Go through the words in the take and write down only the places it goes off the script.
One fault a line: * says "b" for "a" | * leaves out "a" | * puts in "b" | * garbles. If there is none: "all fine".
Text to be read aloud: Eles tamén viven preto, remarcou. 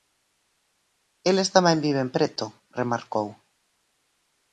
all fine